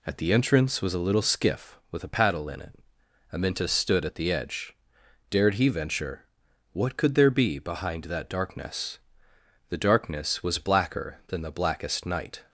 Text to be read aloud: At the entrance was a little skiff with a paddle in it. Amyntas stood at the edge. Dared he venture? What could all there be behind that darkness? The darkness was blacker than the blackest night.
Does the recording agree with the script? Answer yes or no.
no